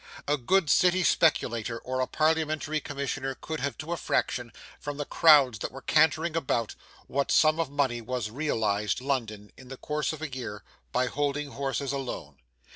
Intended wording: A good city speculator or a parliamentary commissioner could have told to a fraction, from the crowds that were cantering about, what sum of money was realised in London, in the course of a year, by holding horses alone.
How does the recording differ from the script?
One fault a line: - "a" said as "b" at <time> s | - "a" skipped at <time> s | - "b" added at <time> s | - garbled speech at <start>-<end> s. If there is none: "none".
- "told" skipped at 3.8 s
- "in" skipped at 9.0 s